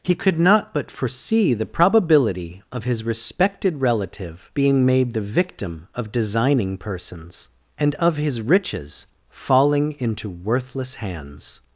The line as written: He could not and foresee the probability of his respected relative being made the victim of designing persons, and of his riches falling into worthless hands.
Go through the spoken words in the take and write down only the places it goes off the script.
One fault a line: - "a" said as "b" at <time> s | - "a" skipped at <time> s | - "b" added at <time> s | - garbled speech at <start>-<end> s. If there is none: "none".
- "and" said as "but" at 0.7 s